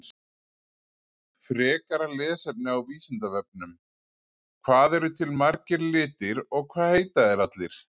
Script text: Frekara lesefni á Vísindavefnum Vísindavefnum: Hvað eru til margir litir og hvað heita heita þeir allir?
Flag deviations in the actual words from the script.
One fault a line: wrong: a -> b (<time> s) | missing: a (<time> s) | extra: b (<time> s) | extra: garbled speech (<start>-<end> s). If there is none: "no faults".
missing: Vísindavefnum (3.8 s)
missing: heita (7.3 s)